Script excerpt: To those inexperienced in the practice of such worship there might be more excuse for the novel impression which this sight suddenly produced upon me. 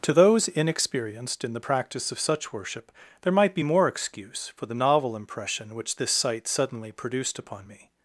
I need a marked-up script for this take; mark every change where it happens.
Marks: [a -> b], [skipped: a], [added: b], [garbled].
To those inexperienced in the practice of such worship there might be more excuse for the novel impression which this sight suddenly produced upon me.